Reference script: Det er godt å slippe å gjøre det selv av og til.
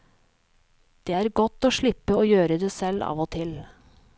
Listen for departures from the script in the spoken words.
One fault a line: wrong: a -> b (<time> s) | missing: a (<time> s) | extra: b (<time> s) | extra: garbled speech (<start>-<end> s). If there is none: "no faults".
no faults